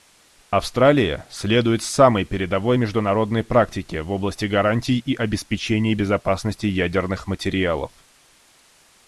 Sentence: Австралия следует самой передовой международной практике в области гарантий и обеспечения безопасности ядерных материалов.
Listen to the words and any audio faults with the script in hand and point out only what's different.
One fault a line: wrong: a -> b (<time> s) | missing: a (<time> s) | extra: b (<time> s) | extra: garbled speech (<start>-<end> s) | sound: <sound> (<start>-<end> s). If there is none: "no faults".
no faults